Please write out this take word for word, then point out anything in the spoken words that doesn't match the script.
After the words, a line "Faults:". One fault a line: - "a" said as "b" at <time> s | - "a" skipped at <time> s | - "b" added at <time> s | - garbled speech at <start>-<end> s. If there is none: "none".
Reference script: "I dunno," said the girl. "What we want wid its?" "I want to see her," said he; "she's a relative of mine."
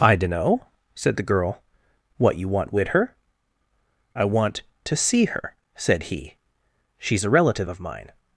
"I dunno," said the girl. "What you want wid her?" "I want to see her," said he; "she's a relative of mine."
Faults:
- "we" said as "you" at 2.4 s
- "its" said as "her" at 2.9 s